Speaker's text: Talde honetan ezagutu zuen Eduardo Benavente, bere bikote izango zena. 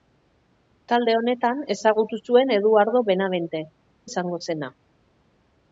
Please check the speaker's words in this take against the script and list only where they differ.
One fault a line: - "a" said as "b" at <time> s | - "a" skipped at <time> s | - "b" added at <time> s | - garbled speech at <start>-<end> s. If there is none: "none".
- "bere bikote" skipped at 3.6 s